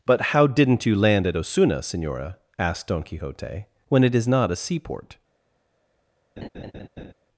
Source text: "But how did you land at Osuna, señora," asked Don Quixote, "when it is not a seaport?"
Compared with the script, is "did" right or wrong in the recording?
wrong